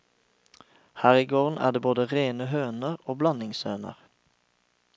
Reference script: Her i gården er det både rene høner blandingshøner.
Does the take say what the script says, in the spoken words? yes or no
no